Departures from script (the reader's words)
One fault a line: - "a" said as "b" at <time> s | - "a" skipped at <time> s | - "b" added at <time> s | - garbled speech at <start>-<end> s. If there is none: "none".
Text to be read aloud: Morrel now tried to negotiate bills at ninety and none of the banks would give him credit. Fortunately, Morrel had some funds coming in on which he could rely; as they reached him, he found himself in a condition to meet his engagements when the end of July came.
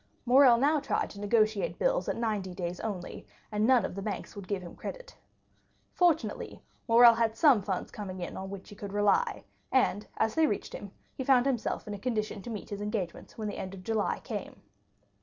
- "days only" added at 2.5 s
- "and" added at 9.7 s